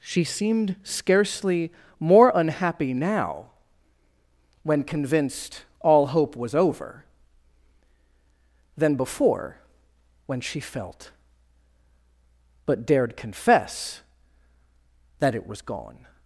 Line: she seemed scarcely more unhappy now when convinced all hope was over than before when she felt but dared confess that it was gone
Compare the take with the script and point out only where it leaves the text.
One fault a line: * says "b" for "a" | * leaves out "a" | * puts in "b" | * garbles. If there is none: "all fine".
all fine